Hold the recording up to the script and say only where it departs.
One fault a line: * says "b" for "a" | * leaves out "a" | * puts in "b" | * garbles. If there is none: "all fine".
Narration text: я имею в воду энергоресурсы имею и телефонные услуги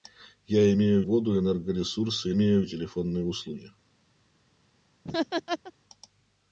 all fine